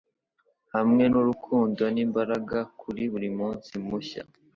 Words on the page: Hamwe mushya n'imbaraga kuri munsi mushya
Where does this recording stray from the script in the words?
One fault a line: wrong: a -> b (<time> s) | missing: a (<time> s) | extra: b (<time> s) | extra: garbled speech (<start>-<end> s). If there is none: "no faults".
wrong: mushya -> nurukundo (1.1 s)
extra: buri (3.1 s)